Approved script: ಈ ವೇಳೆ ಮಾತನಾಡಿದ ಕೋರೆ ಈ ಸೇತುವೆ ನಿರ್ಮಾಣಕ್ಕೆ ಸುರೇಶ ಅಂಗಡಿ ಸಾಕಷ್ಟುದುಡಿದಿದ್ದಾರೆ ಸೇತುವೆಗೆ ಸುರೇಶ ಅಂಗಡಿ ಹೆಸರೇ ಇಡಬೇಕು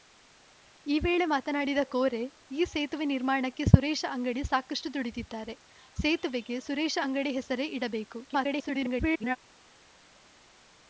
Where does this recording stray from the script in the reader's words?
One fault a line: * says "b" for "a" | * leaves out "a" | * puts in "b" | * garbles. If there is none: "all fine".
* garbles